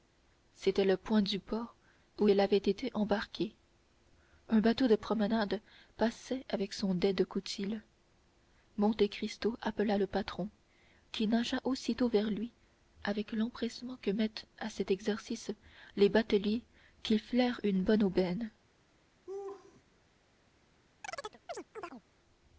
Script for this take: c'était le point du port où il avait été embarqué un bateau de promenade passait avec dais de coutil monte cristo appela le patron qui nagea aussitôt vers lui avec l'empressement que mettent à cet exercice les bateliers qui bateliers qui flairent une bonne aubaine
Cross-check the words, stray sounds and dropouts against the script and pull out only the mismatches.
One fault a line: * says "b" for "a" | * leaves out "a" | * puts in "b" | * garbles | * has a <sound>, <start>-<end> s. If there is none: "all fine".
* puts in "son"
* leaves out "bateliers qui"
* has a laugh, 19.3-19.8 s
* has a chirp, 21.0-22.0 s